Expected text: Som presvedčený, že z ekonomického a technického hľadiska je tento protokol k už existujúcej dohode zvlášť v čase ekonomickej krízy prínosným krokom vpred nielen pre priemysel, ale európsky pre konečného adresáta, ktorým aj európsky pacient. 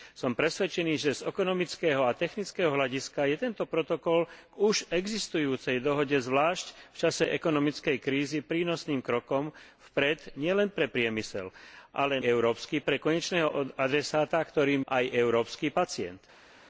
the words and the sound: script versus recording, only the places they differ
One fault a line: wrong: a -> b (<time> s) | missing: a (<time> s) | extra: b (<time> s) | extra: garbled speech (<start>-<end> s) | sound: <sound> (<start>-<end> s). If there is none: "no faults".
no faults